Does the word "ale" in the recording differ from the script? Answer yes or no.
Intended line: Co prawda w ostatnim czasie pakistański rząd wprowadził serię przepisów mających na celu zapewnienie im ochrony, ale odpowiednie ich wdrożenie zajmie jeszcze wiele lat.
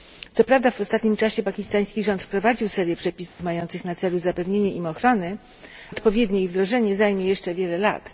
yes